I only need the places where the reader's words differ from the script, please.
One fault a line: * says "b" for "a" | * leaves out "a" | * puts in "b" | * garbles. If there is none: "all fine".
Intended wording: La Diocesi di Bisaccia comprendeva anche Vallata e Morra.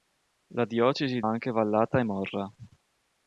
* leaves out "di Bisaccia comprendeva"